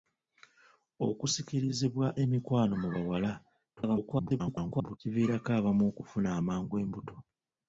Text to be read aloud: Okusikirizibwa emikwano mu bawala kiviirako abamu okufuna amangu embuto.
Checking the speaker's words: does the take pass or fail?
fail